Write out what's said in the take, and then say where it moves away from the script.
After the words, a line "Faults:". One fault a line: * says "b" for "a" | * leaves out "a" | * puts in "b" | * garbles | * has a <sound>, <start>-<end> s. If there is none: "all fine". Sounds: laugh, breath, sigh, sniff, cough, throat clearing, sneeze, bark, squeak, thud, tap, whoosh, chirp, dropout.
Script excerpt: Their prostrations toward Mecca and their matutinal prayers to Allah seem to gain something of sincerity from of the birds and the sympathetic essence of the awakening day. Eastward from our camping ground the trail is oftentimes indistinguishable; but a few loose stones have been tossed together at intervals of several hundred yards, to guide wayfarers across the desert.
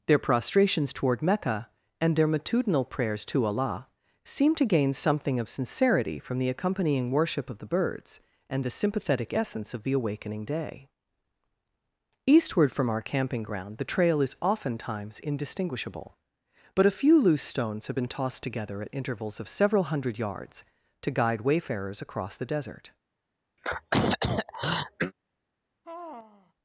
Their prostrations toward Mecca and their matutinal prayers to Allah seem to gain something of sincerity from the accompanying worship of the birds and the sympathetic essence of the awakening day. Eastward from our camping ground the trail is oftentimes indistinguishable; but a few loose stones have been tossed together at intervals of several hundred yards, to guide wayfarers across the desert.
Faults:
* puts in "the accompanying worship"
* has a throat clearing, 23.6-25.1 s
* has a sigh, 25.8-26.5 s